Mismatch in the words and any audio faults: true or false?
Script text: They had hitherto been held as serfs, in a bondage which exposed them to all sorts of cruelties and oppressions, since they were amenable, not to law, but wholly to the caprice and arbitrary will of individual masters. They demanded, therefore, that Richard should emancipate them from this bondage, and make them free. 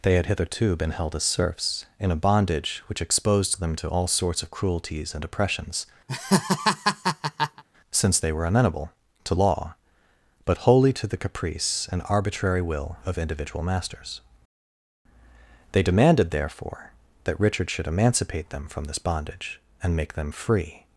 true